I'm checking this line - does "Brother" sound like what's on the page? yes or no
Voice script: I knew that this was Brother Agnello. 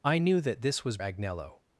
no